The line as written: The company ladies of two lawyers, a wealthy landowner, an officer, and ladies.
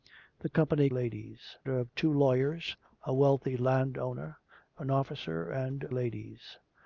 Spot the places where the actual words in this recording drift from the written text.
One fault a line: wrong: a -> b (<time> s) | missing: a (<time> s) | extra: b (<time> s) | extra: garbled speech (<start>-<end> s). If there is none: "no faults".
no faults